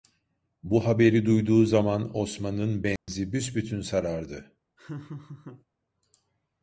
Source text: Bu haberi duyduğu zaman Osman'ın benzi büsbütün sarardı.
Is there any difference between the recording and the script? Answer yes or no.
no